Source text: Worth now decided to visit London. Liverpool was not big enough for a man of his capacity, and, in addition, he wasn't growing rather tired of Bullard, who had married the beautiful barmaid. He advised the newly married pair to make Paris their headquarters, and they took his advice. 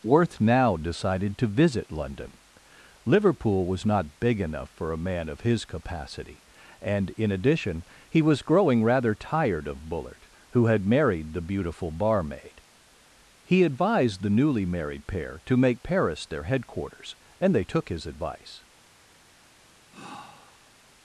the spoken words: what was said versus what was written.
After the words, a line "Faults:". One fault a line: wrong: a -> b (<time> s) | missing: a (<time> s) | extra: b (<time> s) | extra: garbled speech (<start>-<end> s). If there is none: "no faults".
Worth now decided to visit London. Liverpool was not big enough for a man of his capacity, and, in addition, he was growing rather tired of Bullard, who had married the beautiful barmaid. He advised the newly married pair to make Paris their headquarters, and they took his advice.
Faults:
wrong: wasn't -> was (8.2 s)